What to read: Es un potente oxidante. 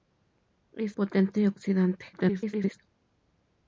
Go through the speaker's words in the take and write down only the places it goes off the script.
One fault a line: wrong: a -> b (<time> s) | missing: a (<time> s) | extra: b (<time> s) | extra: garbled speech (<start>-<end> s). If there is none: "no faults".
missing: un (1.0 s)
extra: garbled speech (2.1-2.8 s)